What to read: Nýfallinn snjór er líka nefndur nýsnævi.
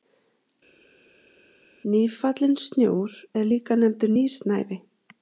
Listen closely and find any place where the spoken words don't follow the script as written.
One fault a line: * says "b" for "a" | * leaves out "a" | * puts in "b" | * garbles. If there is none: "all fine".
all fine